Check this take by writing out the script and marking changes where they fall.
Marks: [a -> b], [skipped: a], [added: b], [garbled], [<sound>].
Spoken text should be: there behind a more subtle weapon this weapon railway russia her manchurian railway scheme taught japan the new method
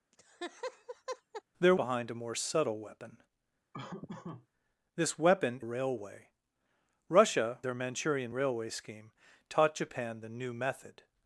[laugh] there behind a more subtle weapon [laugh] this weapon railway russia her manchurian railway scheme taught japan the new method